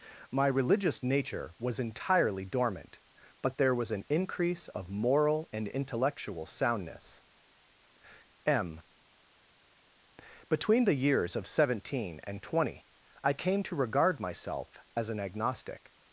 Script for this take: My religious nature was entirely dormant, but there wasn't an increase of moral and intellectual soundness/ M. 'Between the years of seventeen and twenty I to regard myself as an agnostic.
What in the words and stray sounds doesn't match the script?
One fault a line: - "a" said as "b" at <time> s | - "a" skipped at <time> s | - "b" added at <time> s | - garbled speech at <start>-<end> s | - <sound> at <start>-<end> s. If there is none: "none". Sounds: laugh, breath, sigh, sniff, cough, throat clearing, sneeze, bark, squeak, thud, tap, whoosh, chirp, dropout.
- "wasn't" said as "was" at 3.8 s
- "came" added at 13.3 s